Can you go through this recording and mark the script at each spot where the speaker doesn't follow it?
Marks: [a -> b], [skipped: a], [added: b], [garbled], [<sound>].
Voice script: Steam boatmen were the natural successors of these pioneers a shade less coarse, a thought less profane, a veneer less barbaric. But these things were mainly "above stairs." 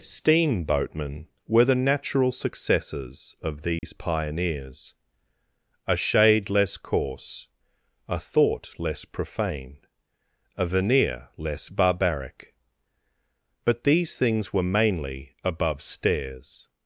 Steam boatmen were the natural successors of these [dropout] pioneers a shade less coarse, a thought less profane, a veneer less barbaric. But these things were mainly "above stairs."